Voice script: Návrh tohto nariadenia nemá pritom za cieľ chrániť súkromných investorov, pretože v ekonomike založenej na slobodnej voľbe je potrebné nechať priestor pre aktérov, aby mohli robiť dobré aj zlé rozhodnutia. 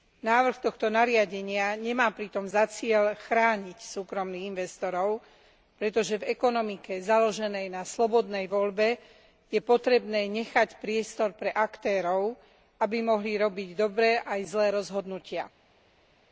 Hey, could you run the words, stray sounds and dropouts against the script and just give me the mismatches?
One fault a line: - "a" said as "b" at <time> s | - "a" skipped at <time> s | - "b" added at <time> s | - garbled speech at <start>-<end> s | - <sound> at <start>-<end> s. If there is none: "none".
none